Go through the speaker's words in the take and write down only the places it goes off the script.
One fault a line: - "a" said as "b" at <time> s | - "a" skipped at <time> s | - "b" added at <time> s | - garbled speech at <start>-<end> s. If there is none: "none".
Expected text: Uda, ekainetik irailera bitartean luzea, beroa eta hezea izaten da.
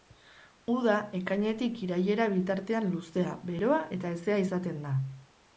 none